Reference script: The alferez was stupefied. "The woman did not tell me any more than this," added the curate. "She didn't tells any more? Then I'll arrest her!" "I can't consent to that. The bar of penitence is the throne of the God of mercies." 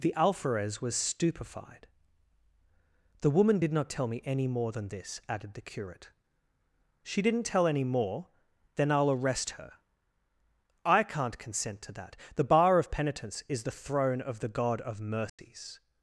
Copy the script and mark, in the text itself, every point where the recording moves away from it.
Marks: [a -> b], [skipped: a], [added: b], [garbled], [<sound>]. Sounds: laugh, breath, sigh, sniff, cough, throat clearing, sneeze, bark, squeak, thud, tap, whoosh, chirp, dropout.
The alferez was stupefied. "The woman did not tell me any more than this," added the curate. "She didn't [tells -> tell] any more? Then I'll arrest her!" "I can't consent to that. The bar of penitence is the throne of the God of mercies." [dropout]